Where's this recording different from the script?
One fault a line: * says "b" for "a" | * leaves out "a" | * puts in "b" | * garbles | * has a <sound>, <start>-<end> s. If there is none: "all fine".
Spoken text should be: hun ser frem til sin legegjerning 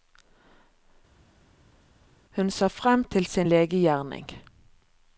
all fine